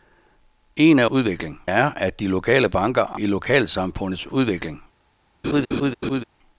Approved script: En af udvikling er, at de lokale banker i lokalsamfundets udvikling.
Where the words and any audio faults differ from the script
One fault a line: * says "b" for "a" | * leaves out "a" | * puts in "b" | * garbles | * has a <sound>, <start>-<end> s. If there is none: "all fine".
* has a laugh, 5.4-6.2 s